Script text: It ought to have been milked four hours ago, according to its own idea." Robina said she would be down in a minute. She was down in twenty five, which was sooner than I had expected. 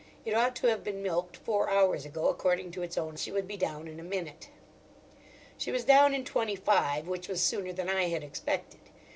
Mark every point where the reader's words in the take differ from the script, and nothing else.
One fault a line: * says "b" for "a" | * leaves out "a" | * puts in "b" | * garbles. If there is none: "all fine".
* leaves out "idea Robina said"